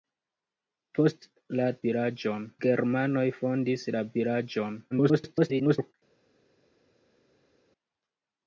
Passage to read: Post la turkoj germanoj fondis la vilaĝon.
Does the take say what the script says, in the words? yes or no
no